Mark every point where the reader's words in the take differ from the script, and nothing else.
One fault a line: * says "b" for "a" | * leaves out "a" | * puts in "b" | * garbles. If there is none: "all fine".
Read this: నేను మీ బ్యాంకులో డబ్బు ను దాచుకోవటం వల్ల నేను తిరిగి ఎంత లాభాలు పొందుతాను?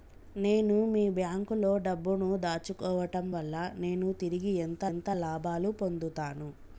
* puts in "ఎంత"